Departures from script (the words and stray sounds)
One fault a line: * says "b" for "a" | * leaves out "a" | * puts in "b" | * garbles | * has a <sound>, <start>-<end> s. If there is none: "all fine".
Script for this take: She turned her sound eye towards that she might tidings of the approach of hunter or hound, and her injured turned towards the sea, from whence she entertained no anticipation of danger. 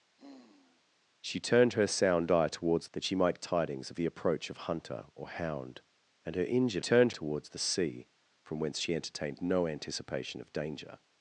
* has a sigh, 0.2-0.8 s